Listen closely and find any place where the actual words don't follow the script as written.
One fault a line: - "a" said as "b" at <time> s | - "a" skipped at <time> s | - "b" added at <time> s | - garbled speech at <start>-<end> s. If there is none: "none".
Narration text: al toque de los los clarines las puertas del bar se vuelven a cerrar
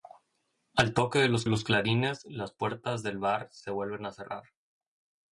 none